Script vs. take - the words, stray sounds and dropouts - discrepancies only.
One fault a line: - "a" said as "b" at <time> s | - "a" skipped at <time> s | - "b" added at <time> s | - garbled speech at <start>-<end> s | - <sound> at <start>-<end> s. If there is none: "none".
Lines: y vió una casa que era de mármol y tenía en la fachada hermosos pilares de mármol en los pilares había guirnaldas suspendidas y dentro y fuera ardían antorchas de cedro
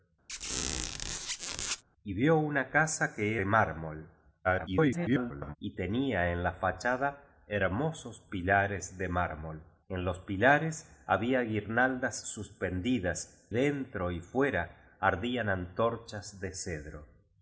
- squeak at 0.3-1.8 s
- "era" skipped at 3.4 s
- garbled speech at 4.4-5.6 s
- "y" skipped at 13.5 s